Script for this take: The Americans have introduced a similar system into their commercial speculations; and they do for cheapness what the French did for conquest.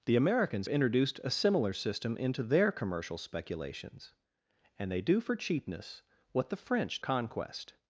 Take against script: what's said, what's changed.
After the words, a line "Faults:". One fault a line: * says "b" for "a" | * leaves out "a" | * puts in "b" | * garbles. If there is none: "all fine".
The Americans introduced a similar system into their commercial speculations; and they do for cheapness what the French conquest.
Faults:
* leaves out "have"
* leaves out "did for"